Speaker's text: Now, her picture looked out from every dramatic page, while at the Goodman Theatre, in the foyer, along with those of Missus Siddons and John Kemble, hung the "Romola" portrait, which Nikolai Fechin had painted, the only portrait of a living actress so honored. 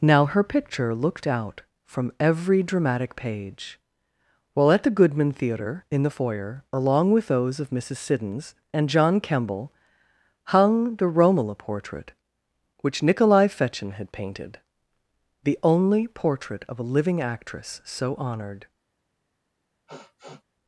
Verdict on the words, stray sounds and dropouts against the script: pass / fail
fail